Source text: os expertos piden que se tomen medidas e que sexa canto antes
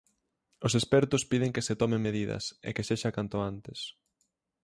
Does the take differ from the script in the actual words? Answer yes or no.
no